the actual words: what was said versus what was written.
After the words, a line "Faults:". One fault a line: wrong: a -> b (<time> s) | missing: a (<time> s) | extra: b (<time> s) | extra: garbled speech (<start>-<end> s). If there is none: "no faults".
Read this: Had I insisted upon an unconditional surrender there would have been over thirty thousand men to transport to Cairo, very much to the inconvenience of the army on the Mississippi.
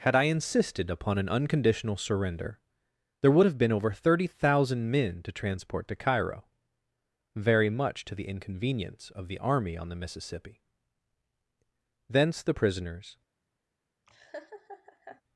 Had I insisted upon an unconditional surrender there would have been over thirty thousand men to transport to Cairo, very much to the inconvenience of the army on the Mississippi. Thence the prisoners
Faults:
extra: Thence the prisoners (12.1 s)